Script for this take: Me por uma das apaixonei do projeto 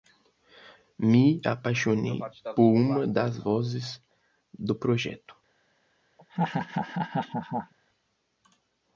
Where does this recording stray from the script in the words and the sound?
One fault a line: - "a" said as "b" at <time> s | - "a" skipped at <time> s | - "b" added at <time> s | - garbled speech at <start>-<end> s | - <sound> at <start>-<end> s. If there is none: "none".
- "apaixonei" added at 1.4 s
- "apaixonei" said as "vozes" at 3.4 s
- laugh at 6.2-7.7 s